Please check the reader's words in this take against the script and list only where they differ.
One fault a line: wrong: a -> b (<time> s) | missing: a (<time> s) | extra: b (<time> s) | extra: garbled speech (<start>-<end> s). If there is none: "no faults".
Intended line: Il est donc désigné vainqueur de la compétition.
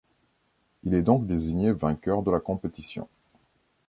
no faults